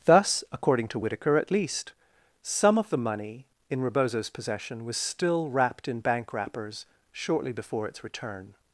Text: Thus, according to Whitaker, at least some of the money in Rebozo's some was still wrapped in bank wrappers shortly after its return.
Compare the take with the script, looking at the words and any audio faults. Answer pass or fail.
fail